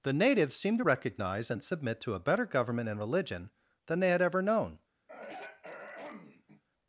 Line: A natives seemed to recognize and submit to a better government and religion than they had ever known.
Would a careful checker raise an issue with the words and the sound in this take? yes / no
yes